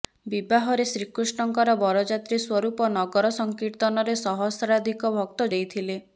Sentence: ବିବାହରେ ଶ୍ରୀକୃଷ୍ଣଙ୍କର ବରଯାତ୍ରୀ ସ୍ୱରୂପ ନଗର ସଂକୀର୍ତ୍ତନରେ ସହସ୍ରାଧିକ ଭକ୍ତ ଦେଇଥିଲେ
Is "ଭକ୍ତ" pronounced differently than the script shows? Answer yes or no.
no